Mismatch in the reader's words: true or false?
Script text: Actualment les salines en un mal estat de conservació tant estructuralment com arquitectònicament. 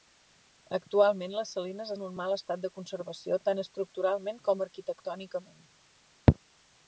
false